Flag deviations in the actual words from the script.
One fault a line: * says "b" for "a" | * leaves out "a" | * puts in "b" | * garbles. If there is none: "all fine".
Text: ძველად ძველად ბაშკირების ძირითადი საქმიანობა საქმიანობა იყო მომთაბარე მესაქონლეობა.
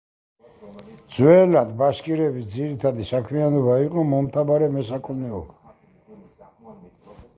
* leaves out "ძველად"
* leaves out "საქმიანობა"